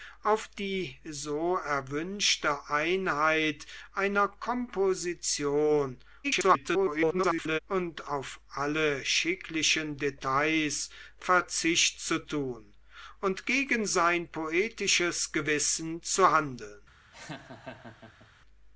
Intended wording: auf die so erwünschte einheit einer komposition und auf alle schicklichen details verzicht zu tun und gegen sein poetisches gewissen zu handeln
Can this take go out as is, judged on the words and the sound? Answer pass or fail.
fail